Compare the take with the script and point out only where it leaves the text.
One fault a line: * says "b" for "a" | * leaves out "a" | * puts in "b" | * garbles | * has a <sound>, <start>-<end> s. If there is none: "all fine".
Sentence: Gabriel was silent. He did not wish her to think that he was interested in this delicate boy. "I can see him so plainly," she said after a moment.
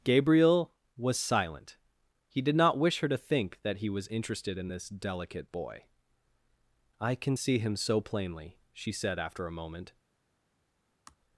* has a sigh, 11.1-11.2 s